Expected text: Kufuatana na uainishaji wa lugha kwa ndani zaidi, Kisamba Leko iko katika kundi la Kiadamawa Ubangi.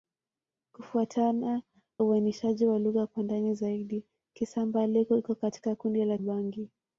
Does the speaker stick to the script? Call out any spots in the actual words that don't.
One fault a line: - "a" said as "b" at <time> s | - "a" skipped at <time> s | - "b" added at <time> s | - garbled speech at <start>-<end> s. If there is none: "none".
- "na" skipped at 1.6 s
- "Kiadamawa" skipped at 6.2 s